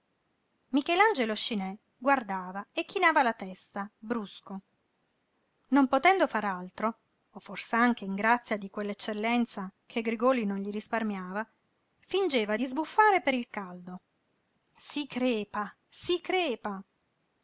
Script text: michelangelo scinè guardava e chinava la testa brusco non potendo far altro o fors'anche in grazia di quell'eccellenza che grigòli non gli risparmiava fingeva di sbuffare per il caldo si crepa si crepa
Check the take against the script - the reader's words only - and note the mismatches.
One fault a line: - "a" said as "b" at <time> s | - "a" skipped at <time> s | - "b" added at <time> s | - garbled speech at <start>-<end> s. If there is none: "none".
none